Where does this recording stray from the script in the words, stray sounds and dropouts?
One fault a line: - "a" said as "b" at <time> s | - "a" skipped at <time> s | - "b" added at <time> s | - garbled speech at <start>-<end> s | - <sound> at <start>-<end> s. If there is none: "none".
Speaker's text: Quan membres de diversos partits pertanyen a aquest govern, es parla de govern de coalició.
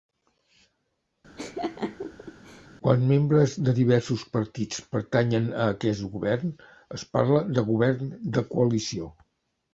- laugh at 1.4-2.7 s